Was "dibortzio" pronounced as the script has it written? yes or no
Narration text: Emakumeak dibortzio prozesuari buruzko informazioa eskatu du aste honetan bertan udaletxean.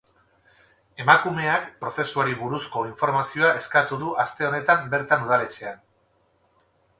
no